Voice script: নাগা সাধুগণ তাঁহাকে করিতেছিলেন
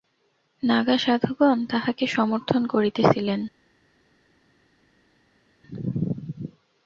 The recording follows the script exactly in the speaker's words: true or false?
false